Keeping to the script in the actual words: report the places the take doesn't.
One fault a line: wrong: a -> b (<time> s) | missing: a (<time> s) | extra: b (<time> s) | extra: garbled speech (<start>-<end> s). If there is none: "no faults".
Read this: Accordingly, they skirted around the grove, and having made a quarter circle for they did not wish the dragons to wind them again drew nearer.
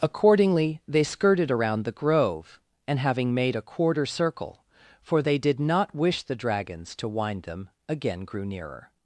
wrong: drew -> grew (8.2 s)